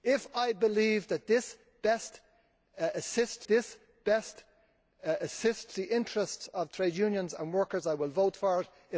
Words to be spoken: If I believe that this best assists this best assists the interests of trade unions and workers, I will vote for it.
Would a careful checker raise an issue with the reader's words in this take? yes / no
no